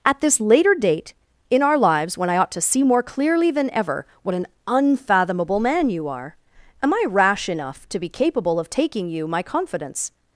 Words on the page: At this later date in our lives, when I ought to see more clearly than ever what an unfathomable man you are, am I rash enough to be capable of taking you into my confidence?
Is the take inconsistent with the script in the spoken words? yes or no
yes